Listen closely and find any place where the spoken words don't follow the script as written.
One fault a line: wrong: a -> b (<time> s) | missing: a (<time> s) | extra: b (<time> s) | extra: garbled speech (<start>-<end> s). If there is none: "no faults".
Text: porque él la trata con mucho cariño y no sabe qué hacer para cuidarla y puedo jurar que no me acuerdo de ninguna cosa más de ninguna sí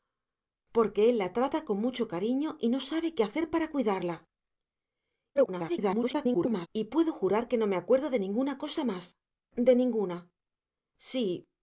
extra: garbled speech (5.3-6.7 s)